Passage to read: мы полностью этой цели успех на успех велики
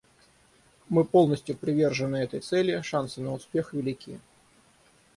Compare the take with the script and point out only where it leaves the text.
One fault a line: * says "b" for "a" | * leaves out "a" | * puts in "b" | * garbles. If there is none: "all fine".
* puts in "привержены"
* says "шансы" for "успех"